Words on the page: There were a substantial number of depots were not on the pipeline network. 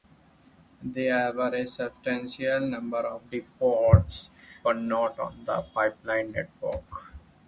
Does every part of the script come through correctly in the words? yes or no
yes